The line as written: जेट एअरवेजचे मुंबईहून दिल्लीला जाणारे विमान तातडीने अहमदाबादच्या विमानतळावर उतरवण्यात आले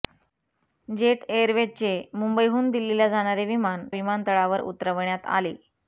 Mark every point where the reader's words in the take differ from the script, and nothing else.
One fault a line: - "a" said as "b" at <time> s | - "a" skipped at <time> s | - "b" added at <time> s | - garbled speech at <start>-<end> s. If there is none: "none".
- "तातडीने अहमदाबादच्या" skipped at 3.9 s